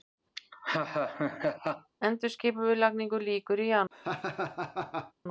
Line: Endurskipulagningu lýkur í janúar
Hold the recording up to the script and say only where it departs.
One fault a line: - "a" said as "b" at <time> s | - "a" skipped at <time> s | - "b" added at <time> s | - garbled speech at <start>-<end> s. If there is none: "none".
none